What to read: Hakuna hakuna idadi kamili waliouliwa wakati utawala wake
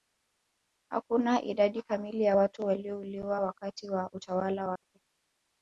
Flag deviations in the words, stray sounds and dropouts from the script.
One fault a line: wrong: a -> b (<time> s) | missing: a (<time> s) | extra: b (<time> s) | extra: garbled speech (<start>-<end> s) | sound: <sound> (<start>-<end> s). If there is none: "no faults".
missing: hakuna (1.4 s)
extra: ya watu (2.2 s)
extra: wa (3.9 s)
sound: dropout (4.8-4.8 s)